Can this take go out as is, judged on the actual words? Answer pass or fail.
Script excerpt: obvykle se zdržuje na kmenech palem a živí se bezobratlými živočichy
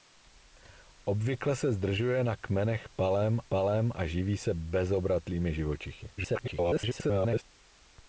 fail